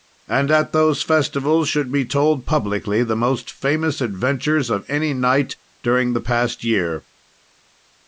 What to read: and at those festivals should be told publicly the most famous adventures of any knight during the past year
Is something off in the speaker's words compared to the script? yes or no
no